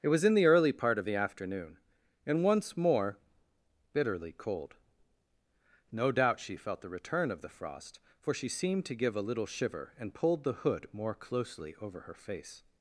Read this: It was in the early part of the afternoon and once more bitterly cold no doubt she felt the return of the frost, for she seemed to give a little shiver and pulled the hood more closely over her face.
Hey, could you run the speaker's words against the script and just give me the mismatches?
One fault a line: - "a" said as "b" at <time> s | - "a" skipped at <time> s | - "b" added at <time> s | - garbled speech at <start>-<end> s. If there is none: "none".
none